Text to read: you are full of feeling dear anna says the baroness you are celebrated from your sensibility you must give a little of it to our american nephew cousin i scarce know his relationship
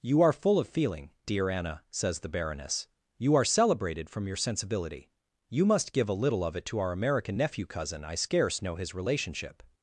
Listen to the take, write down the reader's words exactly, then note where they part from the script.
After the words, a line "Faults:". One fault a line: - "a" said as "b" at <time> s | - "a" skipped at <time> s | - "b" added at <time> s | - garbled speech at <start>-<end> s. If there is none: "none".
you are full of feeling dear anna says the baroness you are celebrated from your sensibility you must give a little of it to our american nephew cousin i scarce know his relationship
Faults:
none